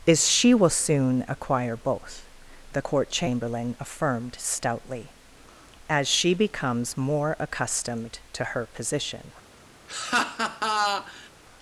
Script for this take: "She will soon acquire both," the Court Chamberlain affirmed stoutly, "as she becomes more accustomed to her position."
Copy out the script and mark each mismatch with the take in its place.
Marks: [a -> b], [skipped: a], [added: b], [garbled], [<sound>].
[added: is] "She will soon acquire both," the Court Chamberlain affirmed stoutly, "as she becomes more accustomed to her position." [laugh]